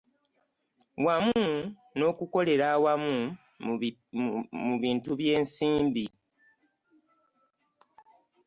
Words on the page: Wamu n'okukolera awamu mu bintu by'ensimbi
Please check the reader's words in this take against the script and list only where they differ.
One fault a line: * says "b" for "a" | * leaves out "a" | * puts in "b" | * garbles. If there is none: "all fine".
all fine